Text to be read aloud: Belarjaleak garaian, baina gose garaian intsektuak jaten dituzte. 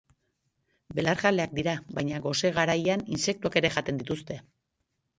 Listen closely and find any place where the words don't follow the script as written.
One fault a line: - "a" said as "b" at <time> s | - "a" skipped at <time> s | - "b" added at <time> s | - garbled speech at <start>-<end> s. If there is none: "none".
- "garaian" said as "dira" at 1.6 s
- "ere" added at 3.6 s